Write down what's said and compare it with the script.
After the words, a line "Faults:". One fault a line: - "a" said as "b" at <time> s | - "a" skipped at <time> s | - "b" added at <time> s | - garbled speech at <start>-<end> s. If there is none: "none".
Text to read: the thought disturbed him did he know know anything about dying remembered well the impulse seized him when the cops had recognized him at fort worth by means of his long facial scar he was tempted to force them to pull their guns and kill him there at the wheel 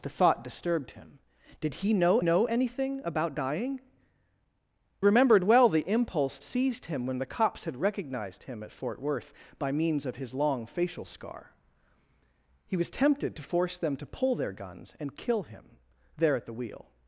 the thought disturbed him did he know know anything about dying remembered well the impulse seized him when the cops had recognized him at fort worth by means of his long facial scar he was tempted to force them to pull their guns and kill him there at the wheel
Faults:
none